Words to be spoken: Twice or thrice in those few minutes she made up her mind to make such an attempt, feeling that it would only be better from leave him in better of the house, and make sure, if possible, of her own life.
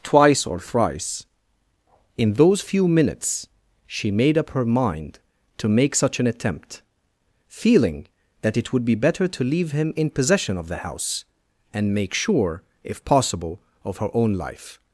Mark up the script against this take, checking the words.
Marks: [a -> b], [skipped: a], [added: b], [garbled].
Twice or thrice in those few minutes she made up her mind to make such an attempt, feeling that it would [skipped: only] be better [from -> to] leave him in [better -> possession] of the house, and make sure, if possible, of her own life.